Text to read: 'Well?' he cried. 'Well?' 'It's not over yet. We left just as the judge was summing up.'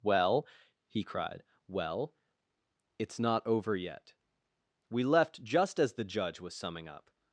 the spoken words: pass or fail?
pass